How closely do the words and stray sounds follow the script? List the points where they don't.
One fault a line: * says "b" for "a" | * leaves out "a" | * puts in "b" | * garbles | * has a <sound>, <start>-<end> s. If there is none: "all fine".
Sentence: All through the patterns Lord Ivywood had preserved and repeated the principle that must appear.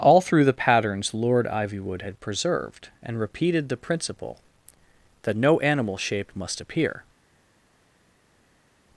* puts in "no animal shape"